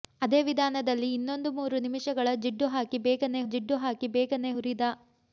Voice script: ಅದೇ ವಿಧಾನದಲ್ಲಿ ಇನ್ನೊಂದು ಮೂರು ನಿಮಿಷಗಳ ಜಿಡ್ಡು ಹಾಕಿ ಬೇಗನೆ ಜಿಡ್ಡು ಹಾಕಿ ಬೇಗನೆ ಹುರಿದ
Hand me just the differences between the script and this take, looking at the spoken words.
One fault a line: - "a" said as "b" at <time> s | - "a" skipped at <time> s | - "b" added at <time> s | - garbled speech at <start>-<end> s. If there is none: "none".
none